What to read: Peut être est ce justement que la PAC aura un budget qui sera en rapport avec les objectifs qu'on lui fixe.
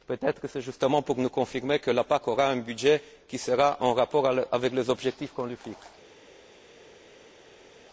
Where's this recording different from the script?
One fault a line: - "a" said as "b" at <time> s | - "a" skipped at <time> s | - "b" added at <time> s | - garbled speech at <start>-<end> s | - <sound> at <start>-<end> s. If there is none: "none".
- "pour nous confirmer" added at 1.0 s